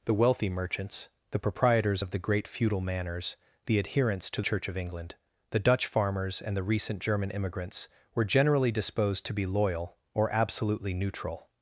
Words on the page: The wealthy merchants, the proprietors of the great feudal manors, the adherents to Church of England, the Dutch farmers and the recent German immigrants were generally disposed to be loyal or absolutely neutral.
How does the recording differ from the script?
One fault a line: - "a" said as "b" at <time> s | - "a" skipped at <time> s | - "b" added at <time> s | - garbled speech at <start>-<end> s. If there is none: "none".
none